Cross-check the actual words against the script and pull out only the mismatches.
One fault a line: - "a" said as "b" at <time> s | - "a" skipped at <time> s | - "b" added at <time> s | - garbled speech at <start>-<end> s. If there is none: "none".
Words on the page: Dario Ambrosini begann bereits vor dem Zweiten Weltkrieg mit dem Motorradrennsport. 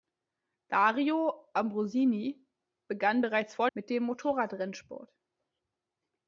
- "dem Zweiten Weltkrieg" skipped at 3.7 s